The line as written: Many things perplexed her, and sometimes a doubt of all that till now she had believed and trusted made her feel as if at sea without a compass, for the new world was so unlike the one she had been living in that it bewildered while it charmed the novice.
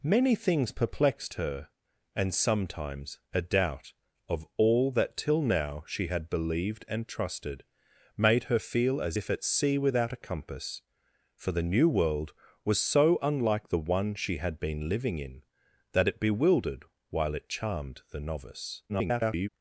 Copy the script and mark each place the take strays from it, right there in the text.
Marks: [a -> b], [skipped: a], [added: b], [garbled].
Many things perplexed her, and sometimes a doubt of all that till now she had believed and trusted made her feel as if at sea without a compass, for the new world was so unlike the one she had been living in that it bewildered while it charmed the novice. [garbled]